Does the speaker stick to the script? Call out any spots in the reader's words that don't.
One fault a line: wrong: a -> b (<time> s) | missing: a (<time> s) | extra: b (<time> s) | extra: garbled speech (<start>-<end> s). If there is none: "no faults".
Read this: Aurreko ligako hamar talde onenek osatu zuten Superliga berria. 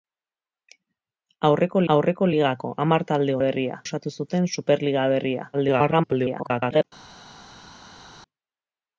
extra: aurreko (1.9 s)
wrong: onenek -> berria (3.5 s)
extra: garbled speech (5.5-6.8 s)